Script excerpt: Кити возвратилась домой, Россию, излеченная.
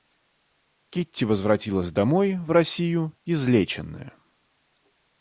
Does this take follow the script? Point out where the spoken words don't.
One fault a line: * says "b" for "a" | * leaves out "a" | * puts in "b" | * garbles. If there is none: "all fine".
* puts in "в"